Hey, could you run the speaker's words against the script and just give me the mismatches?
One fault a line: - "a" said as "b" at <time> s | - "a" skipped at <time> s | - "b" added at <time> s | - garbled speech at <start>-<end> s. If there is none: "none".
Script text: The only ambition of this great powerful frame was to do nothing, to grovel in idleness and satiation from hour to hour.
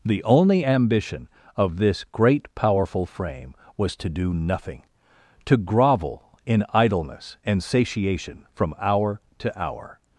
none